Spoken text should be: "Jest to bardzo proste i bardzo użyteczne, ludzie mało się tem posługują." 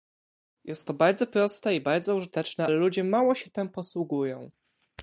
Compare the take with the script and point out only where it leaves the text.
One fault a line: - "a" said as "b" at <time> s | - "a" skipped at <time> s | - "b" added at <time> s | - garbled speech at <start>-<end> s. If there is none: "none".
none